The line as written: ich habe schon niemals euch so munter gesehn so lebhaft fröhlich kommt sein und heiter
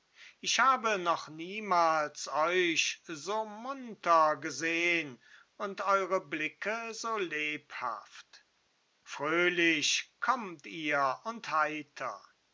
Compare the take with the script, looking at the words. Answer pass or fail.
fail